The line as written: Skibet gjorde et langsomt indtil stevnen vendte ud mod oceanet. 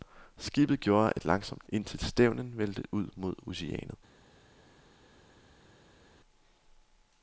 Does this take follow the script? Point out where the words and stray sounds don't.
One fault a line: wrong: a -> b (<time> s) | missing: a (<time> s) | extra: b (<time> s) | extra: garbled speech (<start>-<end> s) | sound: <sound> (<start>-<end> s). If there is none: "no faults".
no faults